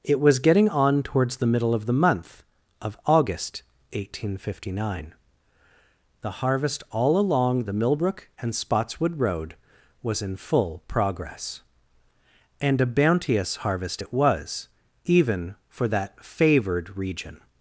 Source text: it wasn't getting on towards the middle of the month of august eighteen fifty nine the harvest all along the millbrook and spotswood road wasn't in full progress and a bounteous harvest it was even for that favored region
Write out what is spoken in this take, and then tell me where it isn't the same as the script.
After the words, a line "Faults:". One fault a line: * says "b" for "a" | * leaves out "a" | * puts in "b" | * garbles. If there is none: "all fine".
it was getting on towards the middle of the month of august eighteen fifty nine the harvest all along the millbrook and spotswood road was in full progress and a bounteous harvest it was even for that favored region
Faults:
* says "was" for "wasn't"
* says "was" for "wasn't"